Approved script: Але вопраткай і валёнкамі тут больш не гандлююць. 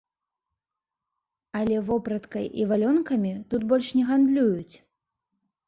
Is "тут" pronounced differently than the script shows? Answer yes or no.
no